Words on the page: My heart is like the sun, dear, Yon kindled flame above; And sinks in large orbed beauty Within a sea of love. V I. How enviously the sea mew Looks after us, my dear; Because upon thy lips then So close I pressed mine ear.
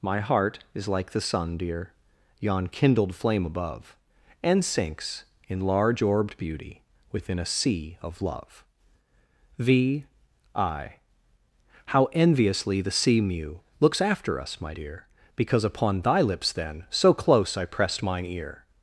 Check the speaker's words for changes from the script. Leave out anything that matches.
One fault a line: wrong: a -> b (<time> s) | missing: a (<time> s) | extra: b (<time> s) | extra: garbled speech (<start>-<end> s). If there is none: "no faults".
no faults